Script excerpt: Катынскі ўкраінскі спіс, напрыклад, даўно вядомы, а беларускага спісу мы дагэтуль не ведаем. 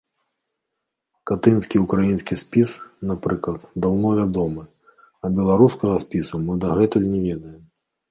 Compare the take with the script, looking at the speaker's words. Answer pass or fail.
pass